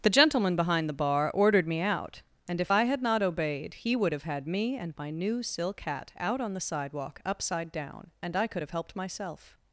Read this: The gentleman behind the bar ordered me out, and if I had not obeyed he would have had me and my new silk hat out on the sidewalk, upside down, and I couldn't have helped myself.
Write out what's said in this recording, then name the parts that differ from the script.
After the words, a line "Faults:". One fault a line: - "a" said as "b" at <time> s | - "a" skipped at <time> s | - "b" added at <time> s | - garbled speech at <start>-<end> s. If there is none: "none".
The gentleman behind the bar ordered me out, and if I had not obeyed he would have had me and my new silk hat out on the sidewalk, upside down, and I could have helped myself.
Faults:
- "couldn't" said as "could" at 8.5 s